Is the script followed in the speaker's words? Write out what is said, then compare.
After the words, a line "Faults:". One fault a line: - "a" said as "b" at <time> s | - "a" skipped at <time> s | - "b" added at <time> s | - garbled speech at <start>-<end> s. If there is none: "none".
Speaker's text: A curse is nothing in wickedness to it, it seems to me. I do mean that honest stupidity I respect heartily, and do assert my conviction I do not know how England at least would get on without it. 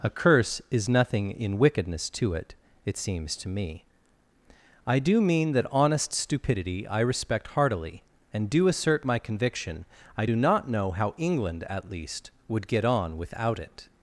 A curse is nothing in wickedness to it, it seems to me. I do mean that honest stupidity I respect heartily, and do assert my conviction I do not know how England at least would get on without it.
Faults:
none